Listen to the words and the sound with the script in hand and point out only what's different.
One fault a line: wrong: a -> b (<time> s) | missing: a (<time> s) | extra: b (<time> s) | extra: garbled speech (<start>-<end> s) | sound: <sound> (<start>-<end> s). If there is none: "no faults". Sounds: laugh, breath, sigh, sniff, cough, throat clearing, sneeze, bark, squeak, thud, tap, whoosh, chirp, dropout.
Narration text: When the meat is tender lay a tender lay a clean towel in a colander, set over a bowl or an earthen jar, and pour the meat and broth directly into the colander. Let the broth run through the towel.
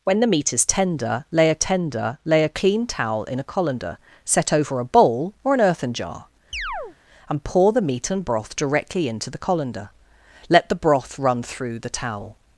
sound: chirp (6.5-7.0 s)